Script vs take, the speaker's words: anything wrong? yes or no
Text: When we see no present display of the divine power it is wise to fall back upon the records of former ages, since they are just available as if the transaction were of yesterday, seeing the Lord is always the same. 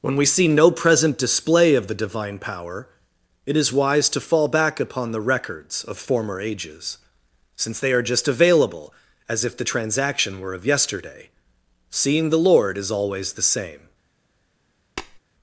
no